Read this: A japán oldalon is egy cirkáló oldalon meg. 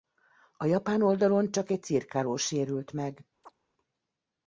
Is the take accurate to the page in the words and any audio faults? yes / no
no